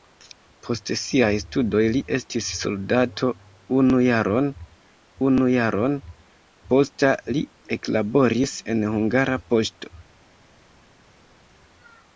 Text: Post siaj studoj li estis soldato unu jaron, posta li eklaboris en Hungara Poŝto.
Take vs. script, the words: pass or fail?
fail